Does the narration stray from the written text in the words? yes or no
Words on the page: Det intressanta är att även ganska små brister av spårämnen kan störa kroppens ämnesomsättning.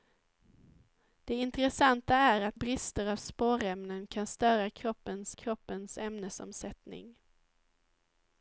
yes